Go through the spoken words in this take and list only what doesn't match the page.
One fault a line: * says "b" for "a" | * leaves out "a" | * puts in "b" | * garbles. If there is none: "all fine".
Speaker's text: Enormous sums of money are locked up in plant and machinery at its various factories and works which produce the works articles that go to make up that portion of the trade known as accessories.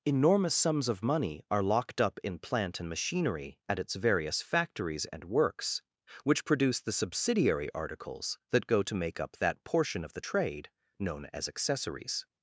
* says "subsidiary" for "works"